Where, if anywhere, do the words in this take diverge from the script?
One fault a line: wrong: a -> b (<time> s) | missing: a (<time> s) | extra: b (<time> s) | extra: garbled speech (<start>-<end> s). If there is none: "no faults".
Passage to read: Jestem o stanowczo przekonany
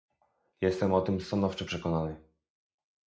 extra: tym (1.0 s)